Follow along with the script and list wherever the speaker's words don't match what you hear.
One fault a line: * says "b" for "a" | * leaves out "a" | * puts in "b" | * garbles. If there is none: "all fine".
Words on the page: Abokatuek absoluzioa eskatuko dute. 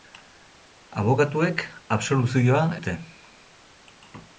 * leaves out "eskatuko"